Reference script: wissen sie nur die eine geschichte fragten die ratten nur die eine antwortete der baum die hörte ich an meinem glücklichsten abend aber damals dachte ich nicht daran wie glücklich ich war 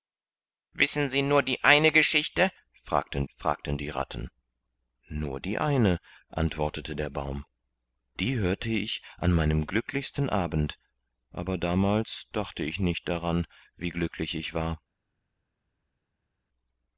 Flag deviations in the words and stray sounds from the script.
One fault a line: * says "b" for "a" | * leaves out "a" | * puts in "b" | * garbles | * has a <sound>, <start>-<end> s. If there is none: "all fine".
* puts in "fragten"